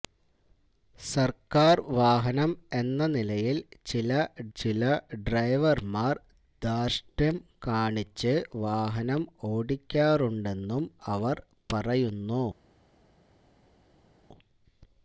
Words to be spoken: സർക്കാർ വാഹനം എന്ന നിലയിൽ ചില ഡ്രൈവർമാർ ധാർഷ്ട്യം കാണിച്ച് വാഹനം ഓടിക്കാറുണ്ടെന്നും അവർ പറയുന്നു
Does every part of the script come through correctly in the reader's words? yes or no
no